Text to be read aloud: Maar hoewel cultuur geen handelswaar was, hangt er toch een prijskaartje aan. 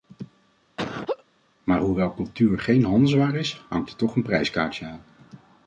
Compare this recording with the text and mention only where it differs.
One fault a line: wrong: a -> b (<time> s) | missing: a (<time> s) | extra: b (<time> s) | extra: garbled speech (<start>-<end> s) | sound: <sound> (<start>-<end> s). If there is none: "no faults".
sound: laugh (0.8-1.2 s)
wrong: was -> is (3.3 s)